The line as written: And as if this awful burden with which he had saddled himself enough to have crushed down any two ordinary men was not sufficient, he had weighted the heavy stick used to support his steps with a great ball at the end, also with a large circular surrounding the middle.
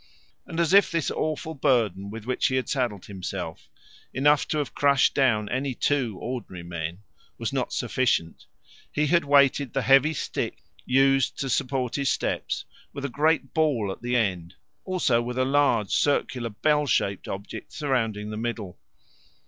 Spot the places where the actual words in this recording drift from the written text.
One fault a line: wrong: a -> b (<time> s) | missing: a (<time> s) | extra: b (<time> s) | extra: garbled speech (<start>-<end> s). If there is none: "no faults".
extra: bell shaped object (16.5 s)